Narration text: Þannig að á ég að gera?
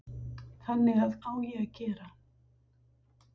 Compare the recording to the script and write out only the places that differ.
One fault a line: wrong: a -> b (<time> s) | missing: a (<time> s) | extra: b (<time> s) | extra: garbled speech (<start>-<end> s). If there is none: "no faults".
no faults